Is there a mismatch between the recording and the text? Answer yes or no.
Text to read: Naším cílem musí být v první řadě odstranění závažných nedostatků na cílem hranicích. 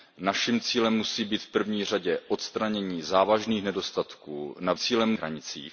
no